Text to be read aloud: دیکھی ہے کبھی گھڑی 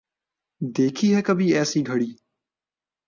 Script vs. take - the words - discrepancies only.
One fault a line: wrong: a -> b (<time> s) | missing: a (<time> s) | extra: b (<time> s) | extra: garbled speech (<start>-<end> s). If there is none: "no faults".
extra: ایسی (1.6 s)